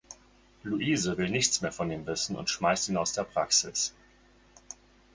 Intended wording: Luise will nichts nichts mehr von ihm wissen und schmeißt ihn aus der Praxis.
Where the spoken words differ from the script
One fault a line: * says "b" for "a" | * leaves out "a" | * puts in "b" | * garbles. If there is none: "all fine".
* leaves out "nichts"